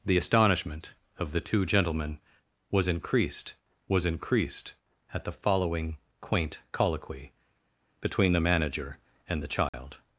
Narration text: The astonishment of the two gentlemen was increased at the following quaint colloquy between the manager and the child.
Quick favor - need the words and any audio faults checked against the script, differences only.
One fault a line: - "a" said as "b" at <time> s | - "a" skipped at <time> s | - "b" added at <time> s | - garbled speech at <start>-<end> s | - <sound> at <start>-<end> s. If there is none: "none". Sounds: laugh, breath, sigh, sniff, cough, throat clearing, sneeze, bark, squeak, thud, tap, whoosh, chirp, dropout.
- "was increased" added at 3.9 s
- dropout at 9.7-9.7 s